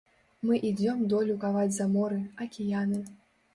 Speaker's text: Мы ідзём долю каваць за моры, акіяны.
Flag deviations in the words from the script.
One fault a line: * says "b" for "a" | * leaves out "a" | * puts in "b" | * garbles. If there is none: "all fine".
all fine